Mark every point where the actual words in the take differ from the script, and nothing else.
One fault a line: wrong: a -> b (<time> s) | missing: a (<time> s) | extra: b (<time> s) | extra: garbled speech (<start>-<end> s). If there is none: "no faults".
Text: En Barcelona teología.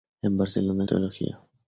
no faults